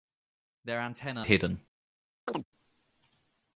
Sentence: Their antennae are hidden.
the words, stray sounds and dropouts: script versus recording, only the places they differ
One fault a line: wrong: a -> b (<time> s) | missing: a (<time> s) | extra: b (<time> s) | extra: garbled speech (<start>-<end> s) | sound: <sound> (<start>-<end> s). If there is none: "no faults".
missing: are (1.2 s)
sound: chirp (2.3-2.5 s)